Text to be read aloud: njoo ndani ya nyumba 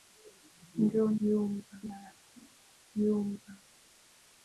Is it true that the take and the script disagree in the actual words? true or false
true